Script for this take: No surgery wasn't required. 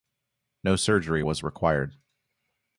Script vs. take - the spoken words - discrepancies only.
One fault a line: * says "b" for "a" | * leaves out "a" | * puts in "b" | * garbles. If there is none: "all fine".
* says "was" for "wasn't"